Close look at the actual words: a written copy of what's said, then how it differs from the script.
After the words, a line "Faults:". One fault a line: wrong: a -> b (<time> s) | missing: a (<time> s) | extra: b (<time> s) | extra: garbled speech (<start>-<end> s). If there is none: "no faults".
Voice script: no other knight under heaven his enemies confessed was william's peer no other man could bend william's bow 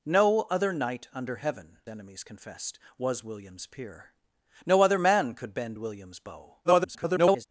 no other knight under heaven enemies confessed was william's peer no other man could bend william's bow [garbled]
Faults:
missing: his (1.8 s)
extra: garbled speech (6.6-7.5 s)